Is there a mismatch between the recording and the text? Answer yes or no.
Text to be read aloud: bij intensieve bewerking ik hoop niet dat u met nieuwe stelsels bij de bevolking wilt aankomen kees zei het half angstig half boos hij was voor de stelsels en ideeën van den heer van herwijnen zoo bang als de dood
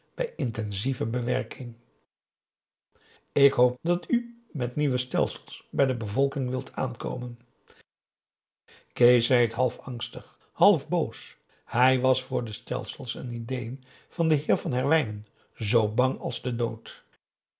yes